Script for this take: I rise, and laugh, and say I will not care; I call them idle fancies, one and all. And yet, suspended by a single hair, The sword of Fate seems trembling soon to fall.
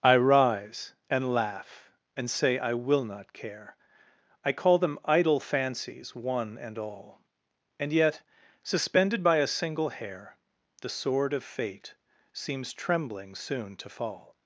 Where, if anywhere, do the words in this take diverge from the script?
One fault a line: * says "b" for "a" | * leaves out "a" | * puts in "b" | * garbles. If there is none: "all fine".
all fine